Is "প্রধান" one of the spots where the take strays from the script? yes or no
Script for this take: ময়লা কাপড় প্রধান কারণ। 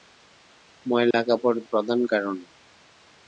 no